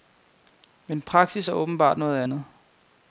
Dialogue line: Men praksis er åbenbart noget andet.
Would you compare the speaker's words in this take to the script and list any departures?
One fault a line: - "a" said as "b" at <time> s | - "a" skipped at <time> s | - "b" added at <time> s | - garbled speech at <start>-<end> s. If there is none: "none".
none